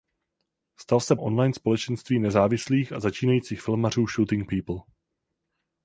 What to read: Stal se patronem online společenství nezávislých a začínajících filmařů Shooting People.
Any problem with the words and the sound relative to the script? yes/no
yes